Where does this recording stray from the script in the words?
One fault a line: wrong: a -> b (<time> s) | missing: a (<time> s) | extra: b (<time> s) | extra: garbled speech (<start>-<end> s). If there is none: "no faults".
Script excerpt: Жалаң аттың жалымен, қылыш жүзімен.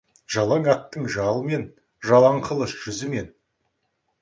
extra: жалаң (2.1 s)